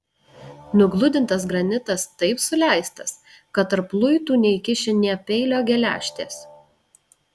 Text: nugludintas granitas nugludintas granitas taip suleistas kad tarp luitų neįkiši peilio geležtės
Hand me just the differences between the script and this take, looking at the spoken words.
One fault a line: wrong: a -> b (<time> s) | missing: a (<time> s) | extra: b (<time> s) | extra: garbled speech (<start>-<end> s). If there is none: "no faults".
missing: nugludintas granitas (2.0 s)
extra: nė (5.0 s)